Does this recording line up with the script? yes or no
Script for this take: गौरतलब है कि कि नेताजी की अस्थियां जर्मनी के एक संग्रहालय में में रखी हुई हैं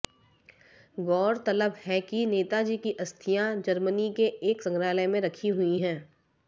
no